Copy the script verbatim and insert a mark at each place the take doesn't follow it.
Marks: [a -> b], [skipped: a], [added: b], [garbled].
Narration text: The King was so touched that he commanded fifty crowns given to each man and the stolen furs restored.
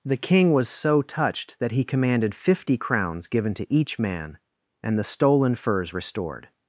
The King was so touched that he commanded fifty crowns given to each man and the stolen furs restored.